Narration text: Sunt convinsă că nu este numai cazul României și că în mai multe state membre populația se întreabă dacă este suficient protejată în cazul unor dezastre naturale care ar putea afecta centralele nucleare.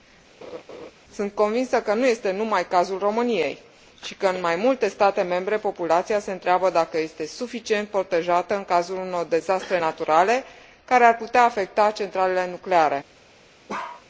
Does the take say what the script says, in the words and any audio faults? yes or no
no